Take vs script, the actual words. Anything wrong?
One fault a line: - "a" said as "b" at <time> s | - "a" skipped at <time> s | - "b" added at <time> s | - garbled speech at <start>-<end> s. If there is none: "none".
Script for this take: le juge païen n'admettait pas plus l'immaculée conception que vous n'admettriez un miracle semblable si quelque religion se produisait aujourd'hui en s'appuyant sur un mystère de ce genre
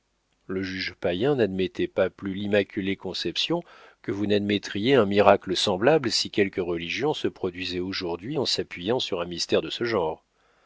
none